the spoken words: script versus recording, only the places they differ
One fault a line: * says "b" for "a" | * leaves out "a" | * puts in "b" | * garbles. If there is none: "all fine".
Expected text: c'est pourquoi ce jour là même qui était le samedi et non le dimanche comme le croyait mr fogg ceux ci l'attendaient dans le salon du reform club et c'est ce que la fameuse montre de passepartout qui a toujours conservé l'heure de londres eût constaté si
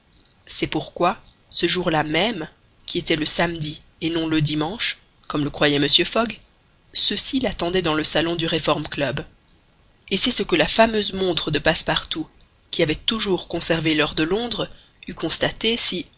* says "avait" for "a"